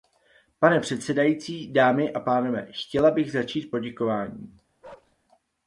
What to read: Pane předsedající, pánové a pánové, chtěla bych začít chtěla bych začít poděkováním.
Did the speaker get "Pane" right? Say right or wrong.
right